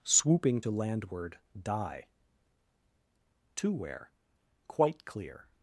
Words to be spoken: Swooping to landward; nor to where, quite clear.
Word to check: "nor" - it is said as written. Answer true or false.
false